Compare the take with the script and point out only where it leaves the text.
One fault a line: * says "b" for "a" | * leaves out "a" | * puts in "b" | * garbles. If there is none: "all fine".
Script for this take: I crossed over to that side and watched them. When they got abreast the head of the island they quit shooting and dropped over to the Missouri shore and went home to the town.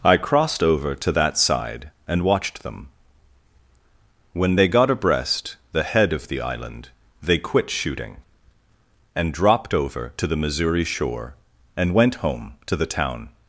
all fine